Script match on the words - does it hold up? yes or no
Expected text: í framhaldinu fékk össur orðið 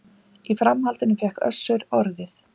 yes